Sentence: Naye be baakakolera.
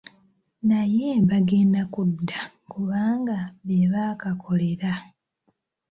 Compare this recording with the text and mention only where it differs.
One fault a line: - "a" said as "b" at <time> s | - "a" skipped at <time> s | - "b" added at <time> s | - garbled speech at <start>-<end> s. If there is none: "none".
- "bagenda kudda kubanga" added at 1.3 s